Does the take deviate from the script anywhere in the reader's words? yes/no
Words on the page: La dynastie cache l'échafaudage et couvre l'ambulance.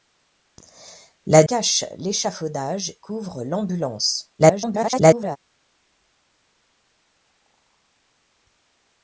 yes